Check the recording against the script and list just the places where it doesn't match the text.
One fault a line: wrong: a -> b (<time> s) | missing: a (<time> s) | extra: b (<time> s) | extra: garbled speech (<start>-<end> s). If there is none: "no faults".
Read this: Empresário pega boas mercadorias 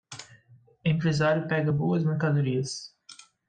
no faults